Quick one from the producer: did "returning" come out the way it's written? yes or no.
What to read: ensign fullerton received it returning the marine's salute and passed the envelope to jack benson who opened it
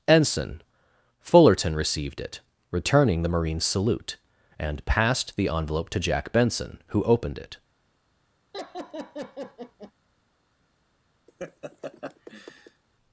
yes